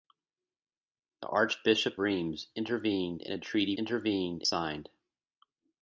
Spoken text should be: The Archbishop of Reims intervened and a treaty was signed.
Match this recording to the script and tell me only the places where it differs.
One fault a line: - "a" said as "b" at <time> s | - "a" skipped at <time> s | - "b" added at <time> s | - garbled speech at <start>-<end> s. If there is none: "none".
- "of" skipped at 2.0 s
- "was" said as "intervened" at 3.8 s